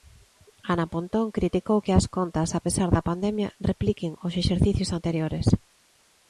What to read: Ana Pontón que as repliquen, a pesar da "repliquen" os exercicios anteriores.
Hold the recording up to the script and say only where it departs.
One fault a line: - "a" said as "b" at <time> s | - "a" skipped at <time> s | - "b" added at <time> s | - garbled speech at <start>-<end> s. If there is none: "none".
- "criticou" added at 1.4 s
- "repliquen" said as "contas" at 2.2 s
- "pandemia" added at 3.1 s